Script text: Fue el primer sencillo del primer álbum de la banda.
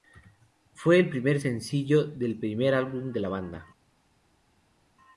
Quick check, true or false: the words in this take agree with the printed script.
true